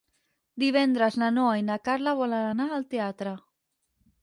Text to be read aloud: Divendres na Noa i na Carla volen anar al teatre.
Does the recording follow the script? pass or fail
pass